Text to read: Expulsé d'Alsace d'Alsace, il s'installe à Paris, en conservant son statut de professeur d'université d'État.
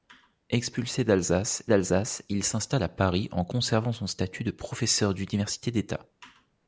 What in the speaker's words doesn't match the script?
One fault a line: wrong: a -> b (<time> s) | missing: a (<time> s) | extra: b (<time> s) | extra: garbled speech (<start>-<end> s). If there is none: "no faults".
no faults